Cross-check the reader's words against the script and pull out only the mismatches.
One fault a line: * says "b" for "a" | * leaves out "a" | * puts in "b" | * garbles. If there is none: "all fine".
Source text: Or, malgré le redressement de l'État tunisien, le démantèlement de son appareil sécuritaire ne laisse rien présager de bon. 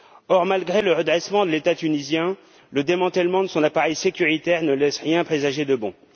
all fine